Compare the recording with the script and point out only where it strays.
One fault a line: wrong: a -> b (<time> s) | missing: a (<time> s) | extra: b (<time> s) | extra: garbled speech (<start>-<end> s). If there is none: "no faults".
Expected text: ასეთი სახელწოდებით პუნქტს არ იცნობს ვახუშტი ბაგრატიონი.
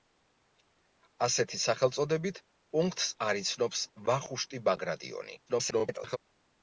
extra: garbled speech (5.5-6.2 s)